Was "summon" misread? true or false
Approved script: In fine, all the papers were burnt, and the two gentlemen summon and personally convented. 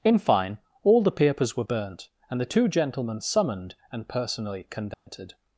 true